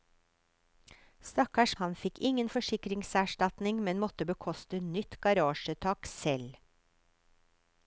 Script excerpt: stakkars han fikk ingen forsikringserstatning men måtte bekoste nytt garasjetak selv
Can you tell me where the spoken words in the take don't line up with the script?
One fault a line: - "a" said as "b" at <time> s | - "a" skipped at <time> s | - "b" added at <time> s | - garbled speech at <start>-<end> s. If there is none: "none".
none